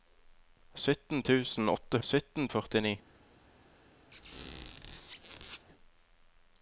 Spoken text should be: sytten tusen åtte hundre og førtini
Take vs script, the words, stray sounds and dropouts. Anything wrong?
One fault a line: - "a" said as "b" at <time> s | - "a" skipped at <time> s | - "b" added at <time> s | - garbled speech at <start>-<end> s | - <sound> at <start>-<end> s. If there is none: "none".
- "hundre" said as "sytten" at 2.1 s
- squeak at 4.1-5.7 s